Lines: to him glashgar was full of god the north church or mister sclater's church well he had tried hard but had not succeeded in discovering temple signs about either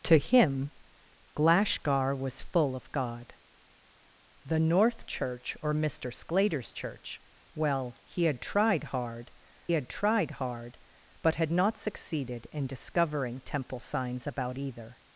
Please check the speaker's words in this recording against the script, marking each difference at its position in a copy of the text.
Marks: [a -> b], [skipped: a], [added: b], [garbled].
to him glashgar was full of god the north church or mister sclater's church well he had tried hard [added: had tried hard] but had not succeeded in discovering temple signs about either